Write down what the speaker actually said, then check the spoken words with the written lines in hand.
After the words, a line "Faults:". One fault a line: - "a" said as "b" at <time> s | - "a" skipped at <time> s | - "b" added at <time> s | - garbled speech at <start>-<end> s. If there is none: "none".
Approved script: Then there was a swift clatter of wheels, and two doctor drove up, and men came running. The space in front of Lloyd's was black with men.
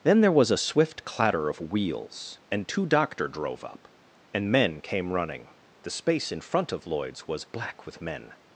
Then there was a swift clatter of wheels, and two doctor drove up, and men came running. The space in front of Lloyd's was black with men.
Faults:
none